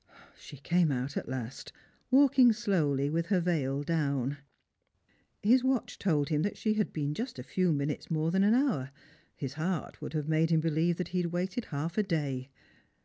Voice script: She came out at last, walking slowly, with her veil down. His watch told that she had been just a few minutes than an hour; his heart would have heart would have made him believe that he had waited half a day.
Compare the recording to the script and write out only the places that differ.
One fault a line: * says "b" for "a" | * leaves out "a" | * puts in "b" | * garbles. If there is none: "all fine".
* puts in "him"
* puts in "more"
* leaves out "heart would have"